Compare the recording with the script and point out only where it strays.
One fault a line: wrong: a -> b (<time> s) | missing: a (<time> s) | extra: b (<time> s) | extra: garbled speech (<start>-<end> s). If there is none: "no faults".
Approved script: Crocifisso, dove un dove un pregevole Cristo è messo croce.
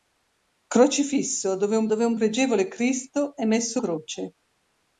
no faults